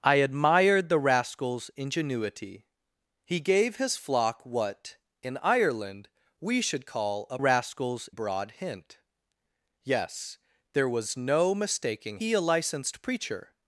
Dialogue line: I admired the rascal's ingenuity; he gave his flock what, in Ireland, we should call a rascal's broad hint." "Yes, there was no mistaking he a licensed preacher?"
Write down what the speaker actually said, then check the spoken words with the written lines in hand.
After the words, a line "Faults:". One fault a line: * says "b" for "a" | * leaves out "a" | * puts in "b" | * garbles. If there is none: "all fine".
I admired the rascal's ingenuity; he gave his flock what, in Ireland, we should call a rascal's broad hint." "Yes, there was no mistaking he a licensed preacher?"
Faults:
all fine